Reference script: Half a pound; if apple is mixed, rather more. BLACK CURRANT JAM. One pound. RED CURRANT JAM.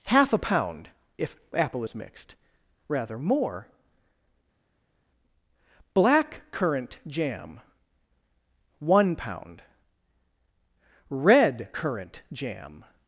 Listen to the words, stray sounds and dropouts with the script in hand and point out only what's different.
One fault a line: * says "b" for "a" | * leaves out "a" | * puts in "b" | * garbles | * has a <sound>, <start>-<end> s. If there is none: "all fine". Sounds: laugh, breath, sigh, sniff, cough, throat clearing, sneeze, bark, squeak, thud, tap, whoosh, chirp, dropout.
all fine